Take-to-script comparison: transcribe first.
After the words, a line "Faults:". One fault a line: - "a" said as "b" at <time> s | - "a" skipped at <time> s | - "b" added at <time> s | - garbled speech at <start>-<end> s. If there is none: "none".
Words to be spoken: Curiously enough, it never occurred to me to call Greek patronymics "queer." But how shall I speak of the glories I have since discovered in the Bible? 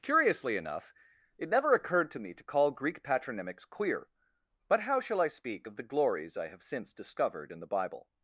Curiously enough, it never occurred to me to call Greek patronymics "queer." But how shall I speak of the glories I have since discovered in the Bible?
Faults:
none